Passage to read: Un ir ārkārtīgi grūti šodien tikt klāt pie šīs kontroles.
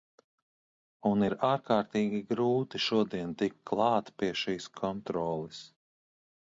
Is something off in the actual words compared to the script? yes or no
no